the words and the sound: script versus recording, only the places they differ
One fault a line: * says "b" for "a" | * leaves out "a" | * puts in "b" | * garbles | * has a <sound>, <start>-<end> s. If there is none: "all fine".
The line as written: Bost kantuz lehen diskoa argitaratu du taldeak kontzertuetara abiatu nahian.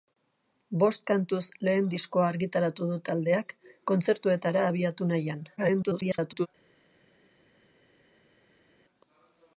* garbles